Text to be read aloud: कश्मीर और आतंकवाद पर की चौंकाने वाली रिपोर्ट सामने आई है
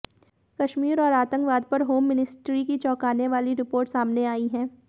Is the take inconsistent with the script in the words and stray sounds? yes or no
yes